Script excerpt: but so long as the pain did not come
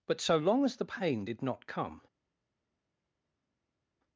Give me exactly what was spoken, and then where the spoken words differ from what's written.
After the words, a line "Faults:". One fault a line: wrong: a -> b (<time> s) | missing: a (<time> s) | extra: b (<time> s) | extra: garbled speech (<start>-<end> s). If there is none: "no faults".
but so long as the pain did not come
Faults:
no faults